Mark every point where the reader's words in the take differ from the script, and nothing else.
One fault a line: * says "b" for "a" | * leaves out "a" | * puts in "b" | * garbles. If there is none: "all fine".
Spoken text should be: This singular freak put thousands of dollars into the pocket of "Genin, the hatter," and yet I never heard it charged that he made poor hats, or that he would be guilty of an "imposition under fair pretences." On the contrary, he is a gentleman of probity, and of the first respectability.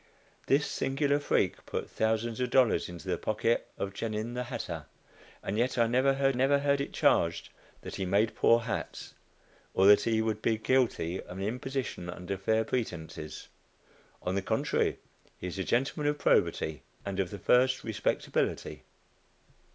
* puts in "never heard"